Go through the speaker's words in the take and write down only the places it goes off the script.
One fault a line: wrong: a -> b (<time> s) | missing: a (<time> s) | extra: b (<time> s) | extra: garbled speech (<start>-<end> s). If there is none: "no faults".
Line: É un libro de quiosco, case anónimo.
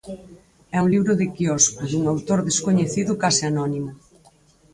extra: dun autor descoñecido (1.9 s)